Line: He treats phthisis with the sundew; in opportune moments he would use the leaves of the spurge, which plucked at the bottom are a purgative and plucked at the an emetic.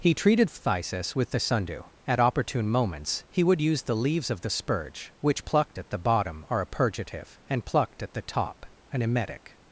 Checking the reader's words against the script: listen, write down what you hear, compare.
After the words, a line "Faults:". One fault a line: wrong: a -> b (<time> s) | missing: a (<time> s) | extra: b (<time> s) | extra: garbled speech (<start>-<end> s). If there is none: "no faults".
He treated phthisis with the sundew; at opportune moments he would use the leaves of the spurge, which plucked at the bottom are a purgative and plucked at the top, an emetic.
Faults:
wrong: treats -> treated (0.1 s)
wrong: in -> at (2.1 s)
extra: top (8.2 s)